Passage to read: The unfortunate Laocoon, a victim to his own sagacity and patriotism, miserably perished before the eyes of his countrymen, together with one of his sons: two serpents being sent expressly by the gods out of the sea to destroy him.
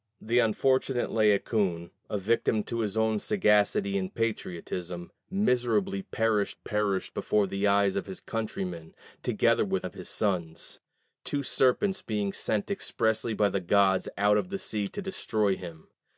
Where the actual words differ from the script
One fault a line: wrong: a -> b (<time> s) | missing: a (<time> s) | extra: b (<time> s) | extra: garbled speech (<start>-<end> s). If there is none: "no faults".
extra: perished (6.5 s)
missing: one (9.9 s)